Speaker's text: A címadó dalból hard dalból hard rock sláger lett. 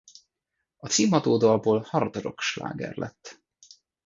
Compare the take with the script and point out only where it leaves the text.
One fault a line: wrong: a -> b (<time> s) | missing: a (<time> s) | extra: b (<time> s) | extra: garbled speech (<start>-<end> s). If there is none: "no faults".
missing: dalból hard (2.2 s)